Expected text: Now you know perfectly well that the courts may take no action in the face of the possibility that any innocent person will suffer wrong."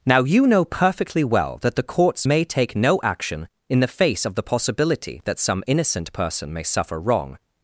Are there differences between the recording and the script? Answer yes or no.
yes